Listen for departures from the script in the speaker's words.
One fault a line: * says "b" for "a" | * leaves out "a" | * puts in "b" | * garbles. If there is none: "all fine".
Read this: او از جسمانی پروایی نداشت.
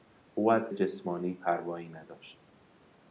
all fine